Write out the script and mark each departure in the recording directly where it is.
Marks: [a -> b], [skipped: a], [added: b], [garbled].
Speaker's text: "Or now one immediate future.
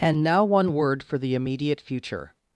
["Or -> And] now one [added: word for the] immediate future.